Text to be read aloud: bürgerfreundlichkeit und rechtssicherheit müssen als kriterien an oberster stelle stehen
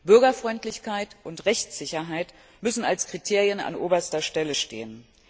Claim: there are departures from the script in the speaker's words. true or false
false